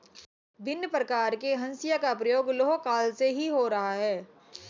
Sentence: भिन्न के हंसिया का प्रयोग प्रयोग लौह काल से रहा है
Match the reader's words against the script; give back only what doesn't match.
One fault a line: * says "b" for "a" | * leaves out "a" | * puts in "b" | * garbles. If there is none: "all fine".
* puts in "प्रकार"
* leaves out "प्रयोग"
* puts in "ही हो"